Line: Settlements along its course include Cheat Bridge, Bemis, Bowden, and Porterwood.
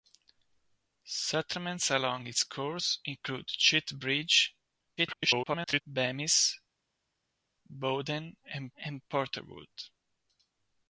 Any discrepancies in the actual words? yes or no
yes